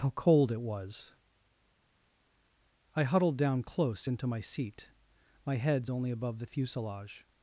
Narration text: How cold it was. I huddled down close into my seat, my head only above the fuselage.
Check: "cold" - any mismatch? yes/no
no